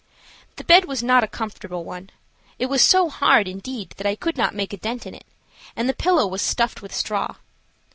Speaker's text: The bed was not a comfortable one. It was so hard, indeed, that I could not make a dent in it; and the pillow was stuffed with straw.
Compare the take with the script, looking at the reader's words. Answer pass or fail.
pass